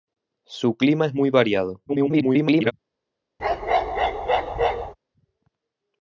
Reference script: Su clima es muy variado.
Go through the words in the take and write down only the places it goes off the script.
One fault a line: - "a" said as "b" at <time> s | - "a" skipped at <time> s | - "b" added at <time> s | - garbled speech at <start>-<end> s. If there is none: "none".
- garbled speech at 1.9-2.7 s